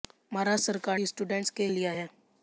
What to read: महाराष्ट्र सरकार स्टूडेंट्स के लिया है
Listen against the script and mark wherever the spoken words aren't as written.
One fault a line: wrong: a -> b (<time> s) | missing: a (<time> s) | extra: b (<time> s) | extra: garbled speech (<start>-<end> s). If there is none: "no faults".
no faults